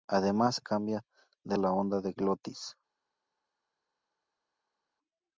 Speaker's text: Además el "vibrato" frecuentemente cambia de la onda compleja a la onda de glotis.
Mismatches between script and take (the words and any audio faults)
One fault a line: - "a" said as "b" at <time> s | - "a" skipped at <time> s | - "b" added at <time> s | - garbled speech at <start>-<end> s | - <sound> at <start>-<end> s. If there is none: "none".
- "el vibrato frecuentemente" skipped at 0.6 s
- "la onda compleja" skipped at 1.6 s